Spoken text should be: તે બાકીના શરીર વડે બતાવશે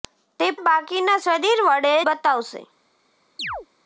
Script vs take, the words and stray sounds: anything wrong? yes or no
yes